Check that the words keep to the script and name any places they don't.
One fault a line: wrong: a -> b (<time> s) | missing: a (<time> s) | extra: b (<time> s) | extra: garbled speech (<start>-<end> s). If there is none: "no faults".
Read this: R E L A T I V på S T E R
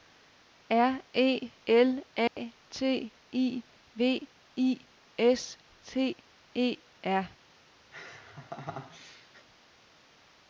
wrong: på -> I (4.6 s)